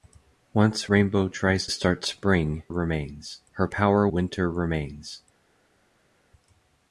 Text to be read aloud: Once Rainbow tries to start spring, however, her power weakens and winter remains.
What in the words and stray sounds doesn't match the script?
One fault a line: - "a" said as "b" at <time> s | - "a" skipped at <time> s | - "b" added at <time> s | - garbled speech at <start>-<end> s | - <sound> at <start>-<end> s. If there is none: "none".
- "to" skipped at 1.7 s
- "however" said as "remains" at 2.7 s
- "weakens and" skipped at 4.1 s